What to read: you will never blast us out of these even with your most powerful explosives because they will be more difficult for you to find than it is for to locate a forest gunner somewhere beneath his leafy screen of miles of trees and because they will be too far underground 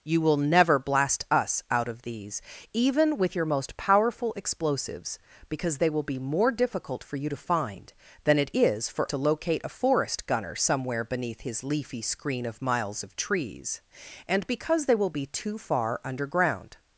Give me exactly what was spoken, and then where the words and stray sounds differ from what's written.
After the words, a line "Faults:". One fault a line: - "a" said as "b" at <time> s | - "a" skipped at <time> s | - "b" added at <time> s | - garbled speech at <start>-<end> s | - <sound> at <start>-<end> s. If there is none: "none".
you will never blast us out of these even with your most powerful explosives because they will be more difficult for you to find than it is for to locate a forest gunner somewhere beneath his leafy screen of miles of trees and because they will be too far underground
Faults:
none